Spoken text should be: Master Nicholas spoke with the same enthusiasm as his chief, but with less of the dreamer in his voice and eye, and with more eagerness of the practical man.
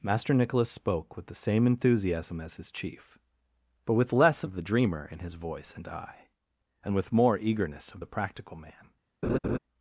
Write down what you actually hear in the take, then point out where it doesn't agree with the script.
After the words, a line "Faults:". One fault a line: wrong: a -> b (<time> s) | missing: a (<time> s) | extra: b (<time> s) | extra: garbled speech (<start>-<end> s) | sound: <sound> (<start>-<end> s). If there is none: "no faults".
Master Nicholas spoke with the same enthusiasm as his chief, but with less of the dreamer in his voice and eye, and with more eagerness of the practical man.
Faults:
sound: laugh (9.2-9.6 s)